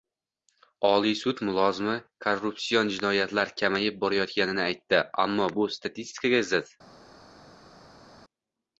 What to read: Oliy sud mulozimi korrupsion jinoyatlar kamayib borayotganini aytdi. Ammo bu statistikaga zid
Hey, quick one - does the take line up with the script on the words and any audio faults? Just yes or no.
yes